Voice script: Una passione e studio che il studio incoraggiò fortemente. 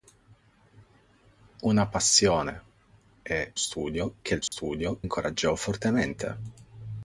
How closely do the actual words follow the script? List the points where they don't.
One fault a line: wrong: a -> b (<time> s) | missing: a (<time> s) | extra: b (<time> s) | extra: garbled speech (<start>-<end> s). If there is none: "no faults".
no faults